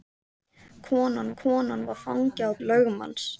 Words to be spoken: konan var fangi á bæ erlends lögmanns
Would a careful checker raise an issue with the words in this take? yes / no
yes